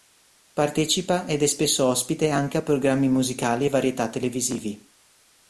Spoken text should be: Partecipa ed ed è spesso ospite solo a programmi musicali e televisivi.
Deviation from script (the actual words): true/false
true